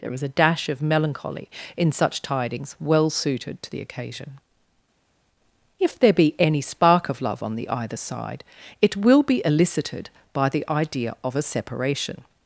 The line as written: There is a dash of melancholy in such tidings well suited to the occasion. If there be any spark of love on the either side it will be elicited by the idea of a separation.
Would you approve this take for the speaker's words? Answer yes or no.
yes